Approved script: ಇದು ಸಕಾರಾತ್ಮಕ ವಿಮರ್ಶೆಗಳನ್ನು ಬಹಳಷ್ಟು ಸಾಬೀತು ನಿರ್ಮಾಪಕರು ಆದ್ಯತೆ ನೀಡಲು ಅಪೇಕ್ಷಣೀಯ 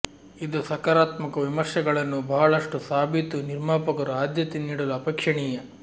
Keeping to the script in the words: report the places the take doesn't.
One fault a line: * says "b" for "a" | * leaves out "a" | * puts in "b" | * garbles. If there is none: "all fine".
all fine